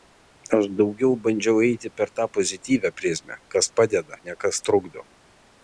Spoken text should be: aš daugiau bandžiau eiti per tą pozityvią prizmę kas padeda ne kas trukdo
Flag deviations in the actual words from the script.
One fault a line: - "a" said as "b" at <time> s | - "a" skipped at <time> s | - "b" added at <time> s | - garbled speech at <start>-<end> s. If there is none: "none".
none